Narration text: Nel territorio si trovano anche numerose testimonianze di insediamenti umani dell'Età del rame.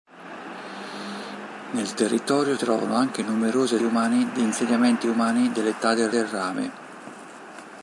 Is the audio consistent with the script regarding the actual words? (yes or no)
no